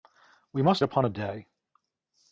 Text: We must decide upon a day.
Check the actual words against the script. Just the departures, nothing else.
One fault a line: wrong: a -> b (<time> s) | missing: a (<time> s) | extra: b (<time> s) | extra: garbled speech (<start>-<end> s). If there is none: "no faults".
missing: decide (0.8 s)